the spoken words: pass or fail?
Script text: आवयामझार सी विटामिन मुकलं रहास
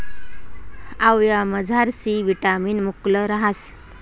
pass